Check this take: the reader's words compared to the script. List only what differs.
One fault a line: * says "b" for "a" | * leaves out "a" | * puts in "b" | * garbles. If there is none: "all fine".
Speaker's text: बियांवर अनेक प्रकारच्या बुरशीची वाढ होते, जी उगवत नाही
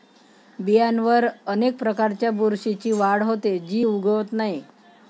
all fine